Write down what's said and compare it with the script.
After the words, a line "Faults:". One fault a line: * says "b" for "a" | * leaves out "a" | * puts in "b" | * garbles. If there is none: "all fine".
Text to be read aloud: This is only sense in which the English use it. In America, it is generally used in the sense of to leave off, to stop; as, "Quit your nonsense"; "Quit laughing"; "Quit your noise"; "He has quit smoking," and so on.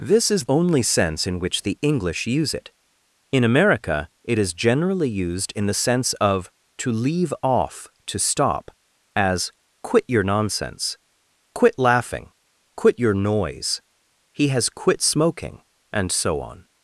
This is only sense in which the English use it. In America, it is generally used in the sense of to leave off, to stop; as, "Quit your nonsense"; "Quit laughing"; "Quit your noise"; "He has quit smoking," and so on.
Faults:
all fine